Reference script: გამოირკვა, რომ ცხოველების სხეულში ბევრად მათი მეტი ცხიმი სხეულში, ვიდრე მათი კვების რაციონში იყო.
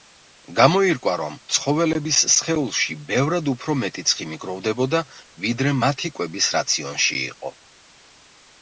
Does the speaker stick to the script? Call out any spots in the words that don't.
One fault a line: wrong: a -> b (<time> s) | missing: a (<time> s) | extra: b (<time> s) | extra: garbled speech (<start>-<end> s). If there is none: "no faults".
wrong: მათი -> უფრო (3.5 s)
wrong: სხეულში -> გროვდებოდა (4.5 s)